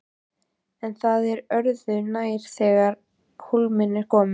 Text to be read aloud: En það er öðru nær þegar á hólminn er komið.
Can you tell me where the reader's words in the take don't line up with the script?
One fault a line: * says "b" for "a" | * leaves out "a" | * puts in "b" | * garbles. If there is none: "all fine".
all fine